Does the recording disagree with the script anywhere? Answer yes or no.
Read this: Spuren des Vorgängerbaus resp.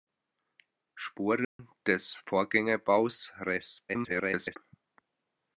yes